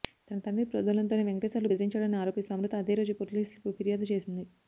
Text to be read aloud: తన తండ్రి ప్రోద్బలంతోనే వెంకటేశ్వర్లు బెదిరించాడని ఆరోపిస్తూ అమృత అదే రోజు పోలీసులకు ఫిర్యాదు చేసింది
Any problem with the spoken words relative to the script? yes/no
no